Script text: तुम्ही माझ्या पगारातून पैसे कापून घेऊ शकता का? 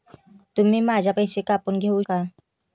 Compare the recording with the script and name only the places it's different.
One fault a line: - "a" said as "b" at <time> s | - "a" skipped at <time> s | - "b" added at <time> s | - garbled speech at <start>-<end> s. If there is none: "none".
- "पगारातून" skipped at 1.1 s
- "शकता" skipped at 2.0 s